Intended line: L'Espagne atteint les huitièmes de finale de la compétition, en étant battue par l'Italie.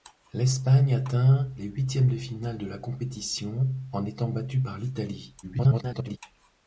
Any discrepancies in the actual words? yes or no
yes